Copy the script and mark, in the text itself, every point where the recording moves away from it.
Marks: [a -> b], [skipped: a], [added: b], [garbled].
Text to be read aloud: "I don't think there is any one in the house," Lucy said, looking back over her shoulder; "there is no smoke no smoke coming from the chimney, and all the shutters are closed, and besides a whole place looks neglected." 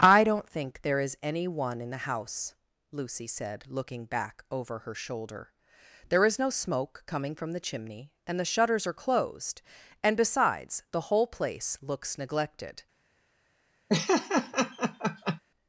"I don't think there is any one in the house," Lucy said, looking back over her shoulder; "there is no smoke [skipped: no smoke] coming from the chimney, and [skipped: all] the shutters are closed, and besides [a -> the] whole place looks neglected."